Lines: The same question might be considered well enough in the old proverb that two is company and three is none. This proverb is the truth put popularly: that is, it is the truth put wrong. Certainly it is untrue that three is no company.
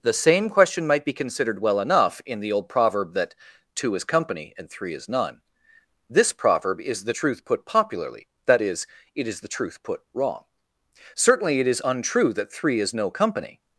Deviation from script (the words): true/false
false